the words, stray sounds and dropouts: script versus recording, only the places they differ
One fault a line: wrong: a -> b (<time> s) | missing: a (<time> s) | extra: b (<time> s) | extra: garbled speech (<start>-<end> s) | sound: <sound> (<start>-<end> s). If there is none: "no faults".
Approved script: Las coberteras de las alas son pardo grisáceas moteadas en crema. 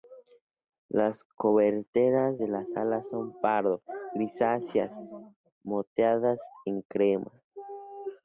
no faults